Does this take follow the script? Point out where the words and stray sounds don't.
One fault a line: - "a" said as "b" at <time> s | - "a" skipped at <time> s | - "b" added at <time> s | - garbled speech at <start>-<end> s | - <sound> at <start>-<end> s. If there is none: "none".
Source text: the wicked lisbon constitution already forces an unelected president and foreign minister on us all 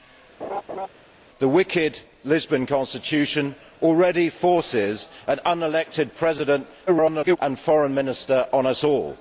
- laugh at 0.4-0.9 s
- garbled speech at 6.9-7.4 s